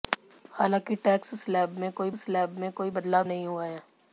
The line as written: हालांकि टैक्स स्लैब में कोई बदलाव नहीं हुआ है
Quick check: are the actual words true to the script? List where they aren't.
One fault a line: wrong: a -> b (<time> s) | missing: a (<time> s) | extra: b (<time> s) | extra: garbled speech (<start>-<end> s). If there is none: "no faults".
extra: स्लैब में कोई (2.2 s)